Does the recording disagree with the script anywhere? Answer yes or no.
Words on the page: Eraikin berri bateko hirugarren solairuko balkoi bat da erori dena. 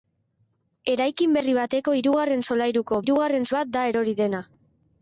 yes